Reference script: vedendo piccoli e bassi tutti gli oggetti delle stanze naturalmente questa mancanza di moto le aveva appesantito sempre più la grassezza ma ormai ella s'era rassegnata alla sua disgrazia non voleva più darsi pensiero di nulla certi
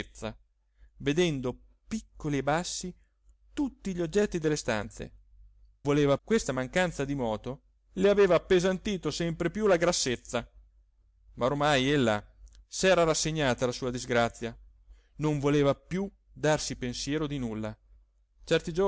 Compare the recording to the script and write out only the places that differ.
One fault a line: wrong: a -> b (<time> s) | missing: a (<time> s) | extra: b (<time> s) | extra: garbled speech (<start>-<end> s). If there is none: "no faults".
wrong: naturalmente -> voleva (5.8 s)